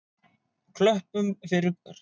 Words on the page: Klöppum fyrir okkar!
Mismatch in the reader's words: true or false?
false